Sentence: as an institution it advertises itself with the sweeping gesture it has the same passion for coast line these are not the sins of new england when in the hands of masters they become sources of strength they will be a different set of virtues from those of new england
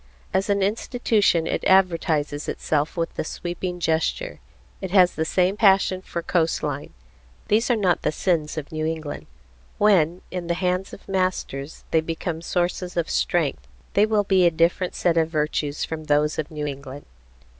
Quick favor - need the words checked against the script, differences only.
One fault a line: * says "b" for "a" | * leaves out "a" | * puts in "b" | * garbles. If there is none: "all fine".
all fine